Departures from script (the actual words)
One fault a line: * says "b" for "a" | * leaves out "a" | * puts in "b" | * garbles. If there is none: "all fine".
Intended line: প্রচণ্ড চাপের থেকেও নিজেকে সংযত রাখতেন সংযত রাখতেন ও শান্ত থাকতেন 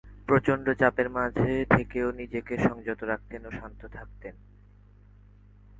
* puts in "মাঝে"
* leaves out "সংযত রাখতেন"